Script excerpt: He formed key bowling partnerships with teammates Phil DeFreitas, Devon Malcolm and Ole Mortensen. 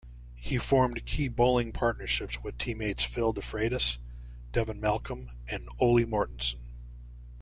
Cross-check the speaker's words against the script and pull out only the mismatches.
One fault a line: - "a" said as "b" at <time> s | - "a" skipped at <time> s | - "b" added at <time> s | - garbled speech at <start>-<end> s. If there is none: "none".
none